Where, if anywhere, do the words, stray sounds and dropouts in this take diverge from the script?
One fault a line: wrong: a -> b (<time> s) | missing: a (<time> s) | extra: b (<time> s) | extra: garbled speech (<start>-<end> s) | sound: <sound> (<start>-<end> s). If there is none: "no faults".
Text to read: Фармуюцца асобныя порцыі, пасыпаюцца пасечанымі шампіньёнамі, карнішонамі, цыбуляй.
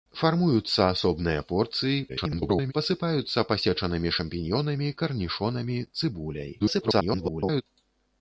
extra: garbled speech (2.1-2.7 s)
extra: garbled speech (6.6-7.6 s)